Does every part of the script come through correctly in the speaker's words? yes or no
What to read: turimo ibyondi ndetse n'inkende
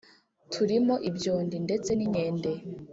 yes